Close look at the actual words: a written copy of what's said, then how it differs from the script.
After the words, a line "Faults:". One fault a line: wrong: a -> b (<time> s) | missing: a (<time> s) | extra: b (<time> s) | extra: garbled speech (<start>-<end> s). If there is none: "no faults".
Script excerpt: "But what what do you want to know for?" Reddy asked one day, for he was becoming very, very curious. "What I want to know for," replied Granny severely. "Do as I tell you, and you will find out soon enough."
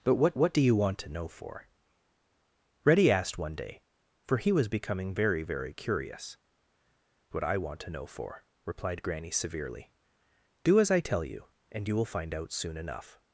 "But what what do you want to know for?" Reddy asked one day, for he was becoming very, very curious. "What I want to know for," replied Granny severely. "Do as I tell you, and you will find out soon enough."
Faults:
no faults